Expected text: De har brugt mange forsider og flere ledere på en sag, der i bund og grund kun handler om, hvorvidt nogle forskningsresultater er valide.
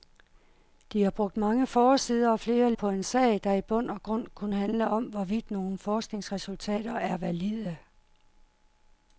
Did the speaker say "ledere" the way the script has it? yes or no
no